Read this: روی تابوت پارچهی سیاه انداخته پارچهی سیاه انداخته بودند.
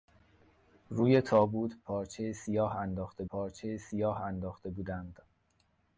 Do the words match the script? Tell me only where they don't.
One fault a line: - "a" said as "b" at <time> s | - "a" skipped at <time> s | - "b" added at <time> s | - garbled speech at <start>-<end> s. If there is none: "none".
none